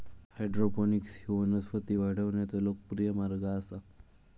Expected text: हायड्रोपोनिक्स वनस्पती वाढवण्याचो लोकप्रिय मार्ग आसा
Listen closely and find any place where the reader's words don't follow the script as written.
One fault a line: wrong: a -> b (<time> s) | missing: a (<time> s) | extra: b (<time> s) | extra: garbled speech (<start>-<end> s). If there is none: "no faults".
extra: ह्यो (1.2 s)